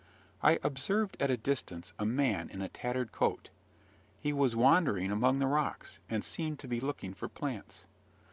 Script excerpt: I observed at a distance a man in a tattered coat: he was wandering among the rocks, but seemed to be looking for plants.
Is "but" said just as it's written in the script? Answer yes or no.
no